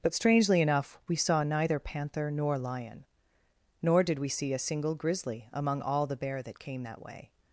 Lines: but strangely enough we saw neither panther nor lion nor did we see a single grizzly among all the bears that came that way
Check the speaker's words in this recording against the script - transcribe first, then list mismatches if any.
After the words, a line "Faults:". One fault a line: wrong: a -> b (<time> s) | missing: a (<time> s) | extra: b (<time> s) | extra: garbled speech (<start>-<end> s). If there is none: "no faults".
but strangely enough we saw neither panther nor lion nor did we see a single grizzly among all the bear that came that way
Faults:
wrong: bears -> bear (6.2 s)